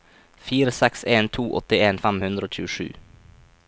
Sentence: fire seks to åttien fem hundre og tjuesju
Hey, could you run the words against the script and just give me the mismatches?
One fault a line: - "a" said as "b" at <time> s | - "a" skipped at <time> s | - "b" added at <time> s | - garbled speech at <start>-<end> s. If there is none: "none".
- "en" added at 1.1 s